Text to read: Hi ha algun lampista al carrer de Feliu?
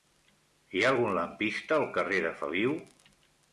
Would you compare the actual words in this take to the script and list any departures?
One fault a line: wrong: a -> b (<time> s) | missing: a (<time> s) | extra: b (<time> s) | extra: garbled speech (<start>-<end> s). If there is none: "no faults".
no faults